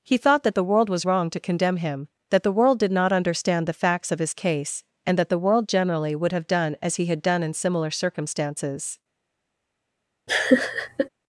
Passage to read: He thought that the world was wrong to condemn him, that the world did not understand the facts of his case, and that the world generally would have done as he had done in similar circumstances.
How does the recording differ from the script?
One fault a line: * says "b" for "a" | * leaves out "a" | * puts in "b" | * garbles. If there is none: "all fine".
all fine